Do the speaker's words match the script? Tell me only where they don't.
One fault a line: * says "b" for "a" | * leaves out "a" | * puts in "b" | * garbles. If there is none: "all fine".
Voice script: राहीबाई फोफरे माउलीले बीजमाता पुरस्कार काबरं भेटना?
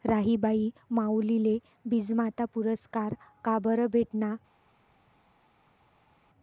* leaves out "फोफरे"